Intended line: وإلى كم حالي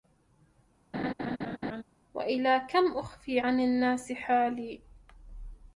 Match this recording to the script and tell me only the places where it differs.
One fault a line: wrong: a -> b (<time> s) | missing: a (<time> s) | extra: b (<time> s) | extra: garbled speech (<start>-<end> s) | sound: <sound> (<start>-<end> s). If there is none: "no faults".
sound: laugh (0.9-1.8 s)
extra: أخفي عن الناس (2.9 s)